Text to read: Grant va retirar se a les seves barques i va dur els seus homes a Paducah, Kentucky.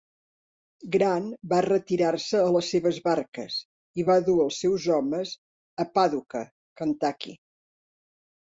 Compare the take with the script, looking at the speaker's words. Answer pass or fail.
pass